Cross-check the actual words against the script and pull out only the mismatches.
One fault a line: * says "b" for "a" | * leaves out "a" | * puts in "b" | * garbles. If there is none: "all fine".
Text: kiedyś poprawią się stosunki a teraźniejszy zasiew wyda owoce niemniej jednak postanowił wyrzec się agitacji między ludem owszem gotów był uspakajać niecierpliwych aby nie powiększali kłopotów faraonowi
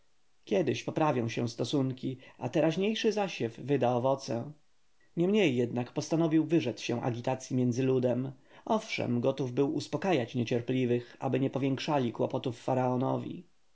all fine